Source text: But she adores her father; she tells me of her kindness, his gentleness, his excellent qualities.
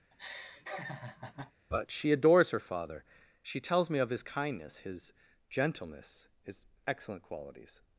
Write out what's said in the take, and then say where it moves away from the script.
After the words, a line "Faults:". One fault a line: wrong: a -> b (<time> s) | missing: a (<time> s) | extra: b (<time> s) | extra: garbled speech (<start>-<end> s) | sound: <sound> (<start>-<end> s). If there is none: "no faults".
But she adores her father; she tells me of his kindness, his gentleness, his excellent qualities.
Faults:
sound: laugh (0.1-1.5 s)
wrong: her -> his (4.1 s)